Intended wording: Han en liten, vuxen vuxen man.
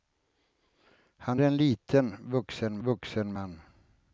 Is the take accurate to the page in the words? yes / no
yes